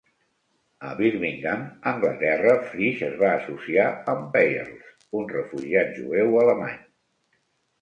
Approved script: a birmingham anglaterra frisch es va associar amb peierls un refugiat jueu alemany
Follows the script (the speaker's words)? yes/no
yes